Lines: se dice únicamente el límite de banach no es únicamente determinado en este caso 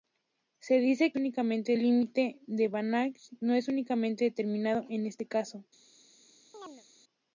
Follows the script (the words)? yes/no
yes